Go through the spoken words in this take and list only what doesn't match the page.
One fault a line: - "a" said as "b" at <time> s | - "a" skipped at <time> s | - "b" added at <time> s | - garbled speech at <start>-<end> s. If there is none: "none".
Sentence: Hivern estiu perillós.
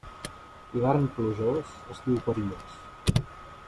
- "plujós" added at 1.1 s